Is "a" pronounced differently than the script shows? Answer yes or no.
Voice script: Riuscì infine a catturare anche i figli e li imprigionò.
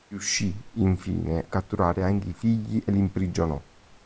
yes